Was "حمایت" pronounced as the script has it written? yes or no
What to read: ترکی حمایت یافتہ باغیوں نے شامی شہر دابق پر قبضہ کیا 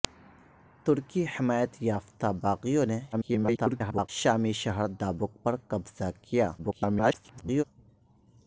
yes